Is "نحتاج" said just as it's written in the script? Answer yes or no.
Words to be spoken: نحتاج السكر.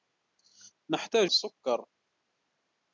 yes